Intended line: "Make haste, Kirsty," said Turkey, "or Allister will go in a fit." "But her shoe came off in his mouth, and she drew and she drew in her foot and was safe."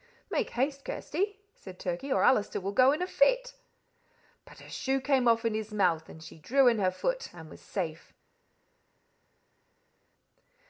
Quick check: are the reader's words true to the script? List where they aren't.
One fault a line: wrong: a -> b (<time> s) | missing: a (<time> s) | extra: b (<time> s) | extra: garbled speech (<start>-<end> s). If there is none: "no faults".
missing: and she drew (6.7 s)